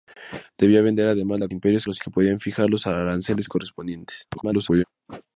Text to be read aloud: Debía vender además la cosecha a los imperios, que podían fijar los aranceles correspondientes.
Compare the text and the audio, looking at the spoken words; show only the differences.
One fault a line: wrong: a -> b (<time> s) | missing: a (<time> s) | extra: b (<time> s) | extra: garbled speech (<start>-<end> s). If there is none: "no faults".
wrong: cosecha -> imperios (1.5 s)
missing: imperios (2.0 s)
extra: garbled speech (4.3-4.8 s)